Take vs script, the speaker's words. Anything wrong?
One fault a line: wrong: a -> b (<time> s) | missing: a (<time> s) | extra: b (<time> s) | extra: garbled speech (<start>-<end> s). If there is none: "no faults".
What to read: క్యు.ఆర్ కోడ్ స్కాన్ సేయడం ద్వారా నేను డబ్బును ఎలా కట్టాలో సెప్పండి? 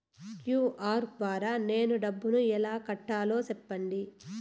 missing: కోడ్ స్కాన్ సేయడం (1.1 s)